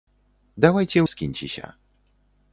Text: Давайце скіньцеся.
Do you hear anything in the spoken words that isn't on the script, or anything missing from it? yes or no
no